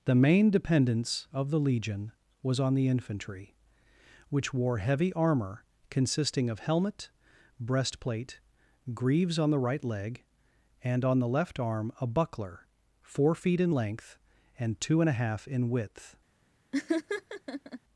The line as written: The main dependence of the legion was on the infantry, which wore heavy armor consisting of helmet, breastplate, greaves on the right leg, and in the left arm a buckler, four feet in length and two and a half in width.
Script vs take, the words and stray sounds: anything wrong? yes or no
yes